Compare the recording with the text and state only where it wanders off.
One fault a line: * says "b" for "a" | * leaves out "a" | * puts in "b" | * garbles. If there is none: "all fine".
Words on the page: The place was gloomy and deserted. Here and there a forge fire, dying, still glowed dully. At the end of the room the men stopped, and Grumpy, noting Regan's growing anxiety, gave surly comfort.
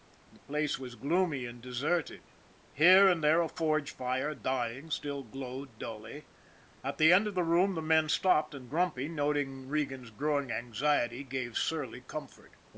all fine